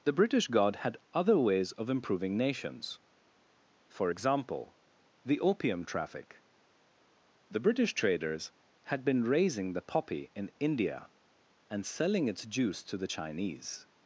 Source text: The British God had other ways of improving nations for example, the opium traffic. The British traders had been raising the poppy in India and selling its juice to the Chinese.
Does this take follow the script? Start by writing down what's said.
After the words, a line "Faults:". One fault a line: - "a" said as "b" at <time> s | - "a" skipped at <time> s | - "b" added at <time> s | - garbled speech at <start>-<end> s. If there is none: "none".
The British God had other ways of improving nations for example, the opium traffic. The British traders had been raising the poppy in India and selling its juice to the Chinese.
Faults:
none